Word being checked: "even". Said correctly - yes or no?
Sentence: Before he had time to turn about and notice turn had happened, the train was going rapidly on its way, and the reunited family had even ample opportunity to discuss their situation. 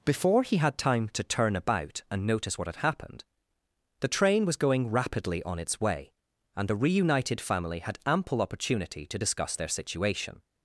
no